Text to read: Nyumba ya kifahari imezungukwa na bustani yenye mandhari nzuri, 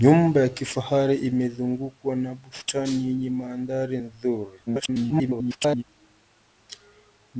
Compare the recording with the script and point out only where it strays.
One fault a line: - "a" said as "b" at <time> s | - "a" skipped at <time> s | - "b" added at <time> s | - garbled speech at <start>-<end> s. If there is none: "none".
- garbled speech at 4.7-5.8 s